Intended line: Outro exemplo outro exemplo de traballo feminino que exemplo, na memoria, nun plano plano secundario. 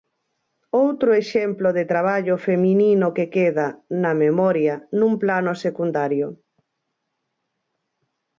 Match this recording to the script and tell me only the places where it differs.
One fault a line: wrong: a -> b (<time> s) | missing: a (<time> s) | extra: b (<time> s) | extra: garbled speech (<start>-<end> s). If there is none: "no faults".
missing: outro exemplo (1.7 s)
wrong: exemplo -> queda (3.4 s)
missing: plano (5.5 s)